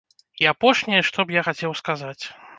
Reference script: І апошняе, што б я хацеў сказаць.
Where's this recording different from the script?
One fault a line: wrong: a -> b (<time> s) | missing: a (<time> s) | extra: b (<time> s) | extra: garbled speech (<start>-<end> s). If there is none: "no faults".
no faults